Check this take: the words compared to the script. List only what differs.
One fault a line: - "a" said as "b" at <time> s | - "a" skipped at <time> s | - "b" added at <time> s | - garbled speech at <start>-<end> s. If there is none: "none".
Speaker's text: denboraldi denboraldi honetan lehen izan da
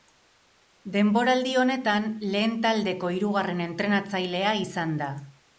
- "denboraldi" skipped at 1.5 s
- "taldeko hirugarren entrenatzailea" added at 2.6 s